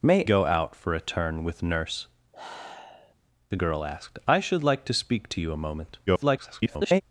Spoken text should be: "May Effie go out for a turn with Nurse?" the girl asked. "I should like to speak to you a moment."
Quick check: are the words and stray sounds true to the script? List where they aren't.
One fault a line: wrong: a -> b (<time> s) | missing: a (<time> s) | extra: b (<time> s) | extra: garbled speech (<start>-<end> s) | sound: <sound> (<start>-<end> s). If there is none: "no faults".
missing: Effie (0.2 s)
sound: sigh (2.3-3.1 s)
extra: garbled speech (6.1-7.0 s)